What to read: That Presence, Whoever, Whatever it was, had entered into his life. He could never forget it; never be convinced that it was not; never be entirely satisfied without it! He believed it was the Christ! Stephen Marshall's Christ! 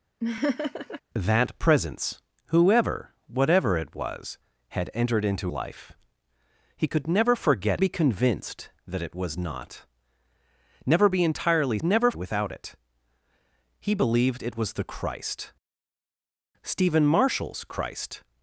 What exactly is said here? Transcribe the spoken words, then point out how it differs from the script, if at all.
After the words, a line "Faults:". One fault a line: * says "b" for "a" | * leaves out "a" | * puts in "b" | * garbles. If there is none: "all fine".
That Presence, Whoever, Whatever it was, had entered into life. He could never forget be convinced that it was not; never be entirely never without it! He believed it was the Christ! Stephen Marshall's Christ!
Faults:
* leaves out "his"
* leaves out "it never"
* says "never" for "satisfied"